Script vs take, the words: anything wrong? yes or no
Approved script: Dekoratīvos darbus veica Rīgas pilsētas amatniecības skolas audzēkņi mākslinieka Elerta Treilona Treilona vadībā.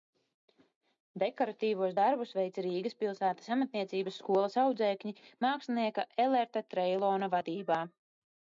yes